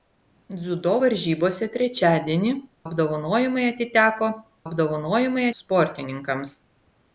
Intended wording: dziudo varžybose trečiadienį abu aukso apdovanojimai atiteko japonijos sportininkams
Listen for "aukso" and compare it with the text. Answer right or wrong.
wrong